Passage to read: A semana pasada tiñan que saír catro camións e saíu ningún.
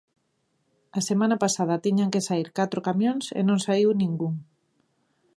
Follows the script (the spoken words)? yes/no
no